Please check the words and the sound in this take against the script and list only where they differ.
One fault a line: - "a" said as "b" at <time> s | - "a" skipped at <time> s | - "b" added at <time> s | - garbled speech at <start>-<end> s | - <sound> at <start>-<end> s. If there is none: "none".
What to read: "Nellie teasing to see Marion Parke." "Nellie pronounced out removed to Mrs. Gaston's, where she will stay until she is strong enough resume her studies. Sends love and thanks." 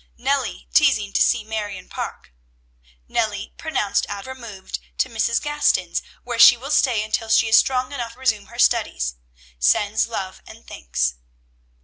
none